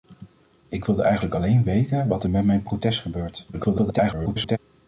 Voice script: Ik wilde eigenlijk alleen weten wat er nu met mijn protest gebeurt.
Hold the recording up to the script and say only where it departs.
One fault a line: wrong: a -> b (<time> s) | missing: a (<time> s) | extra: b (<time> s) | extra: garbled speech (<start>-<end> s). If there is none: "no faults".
missing: nu (2.3 s)
extra: garbled speech (3.5-4.6 s)